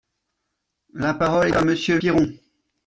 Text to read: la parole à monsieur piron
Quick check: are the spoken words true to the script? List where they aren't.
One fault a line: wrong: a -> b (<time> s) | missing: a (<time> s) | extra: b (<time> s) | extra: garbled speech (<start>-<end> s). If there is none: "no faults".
no faults